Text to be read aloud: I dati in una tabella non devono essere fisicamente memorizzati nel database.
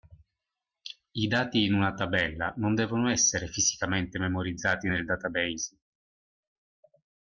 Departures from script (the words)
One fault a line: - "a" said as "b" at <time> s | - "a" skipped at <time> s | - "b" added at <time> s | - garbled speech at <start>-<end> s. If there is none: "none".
none